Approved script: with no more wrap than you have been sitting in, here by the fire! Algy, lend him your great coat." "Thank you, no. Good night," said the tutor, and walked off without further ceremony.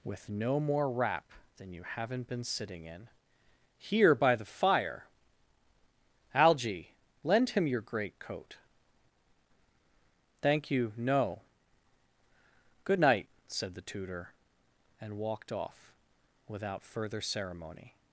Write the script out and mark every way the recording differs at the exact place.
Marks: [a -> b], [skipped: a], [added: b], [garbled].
with no more wrap than you [have -> haven't] been sitting in, here by the fire! Algy, lend him your great coat." "Thank you, no. Good night," said the tutor, and walked off without further ceremony.